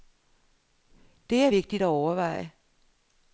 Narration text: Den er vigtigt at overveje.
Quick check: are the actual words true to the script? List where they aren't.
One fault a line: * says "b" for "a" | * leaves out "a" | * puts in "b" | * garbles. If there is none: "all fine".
* says "Det" for "Den"